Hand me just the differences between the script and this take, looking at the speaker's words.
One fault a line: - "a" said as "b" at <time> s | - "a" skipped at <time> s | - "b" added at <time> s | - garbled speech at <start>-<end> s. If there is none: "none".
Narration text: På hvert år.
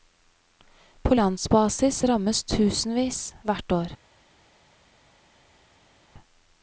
- "landsbasis rammes tusenvis" added at 1.1 s